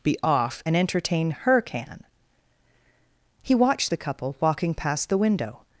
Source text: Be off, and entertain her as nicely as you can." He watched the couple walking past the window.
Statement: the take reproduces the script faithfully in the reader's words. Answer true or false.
false